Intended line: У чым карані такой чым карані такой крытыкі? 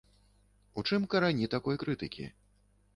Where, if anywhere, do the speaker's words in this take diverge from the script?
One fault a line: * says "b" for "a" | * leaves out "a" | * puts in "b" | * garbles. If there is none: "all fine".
* leaves out "чым карані такой"